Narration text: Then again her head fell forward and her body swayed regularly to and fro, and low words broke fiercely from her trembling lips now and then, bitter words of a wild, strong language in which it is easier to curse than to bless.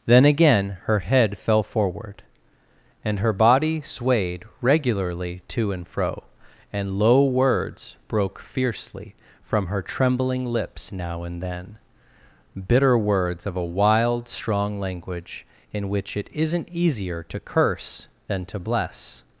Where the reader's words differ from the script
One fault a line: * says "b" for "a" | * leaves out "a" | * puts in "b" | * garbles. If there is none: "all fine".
* says "isn't" for "is"